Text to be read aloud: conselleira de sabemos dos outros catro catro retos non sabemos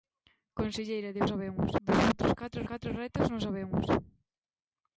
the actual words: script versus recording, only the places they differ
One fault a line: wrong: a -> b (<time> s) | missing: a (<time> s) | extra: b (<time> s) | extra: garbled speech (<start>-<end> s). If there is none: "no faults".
no faults